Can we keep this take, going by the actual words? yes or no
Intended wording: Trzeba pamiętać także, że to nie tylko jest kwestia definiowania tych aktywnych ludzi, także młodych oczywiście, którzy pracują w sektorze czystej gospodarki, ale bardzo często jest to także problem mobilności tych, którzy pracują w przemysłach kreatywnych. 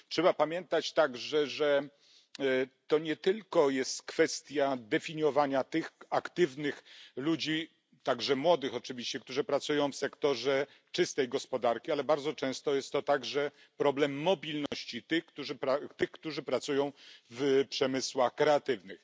yes